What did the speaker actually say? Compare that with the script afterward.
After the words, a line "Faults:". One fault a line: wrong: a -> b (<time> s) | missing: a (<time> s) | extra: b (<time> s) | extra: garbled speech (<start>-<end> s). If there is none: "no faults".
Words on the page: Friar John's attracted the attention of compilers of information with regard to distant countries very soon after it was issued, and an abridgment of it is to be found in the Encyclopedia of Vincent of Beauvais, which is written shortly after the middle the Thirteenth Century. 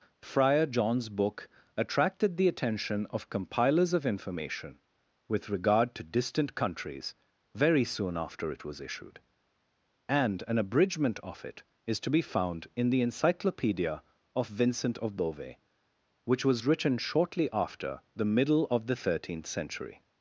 Friar John's book attracted the attention of compilers of information with regard to distant countries very soon after it was issued, and an abridgment of it is to be found in the Encyclopedia of Vincent of Beauvais, which was written shortly after the middle of the Thirteenth Century.
Faults:
extra: book (1.1 s)
wrong: is -> was (16.4 s)
extra: of (18.7 s)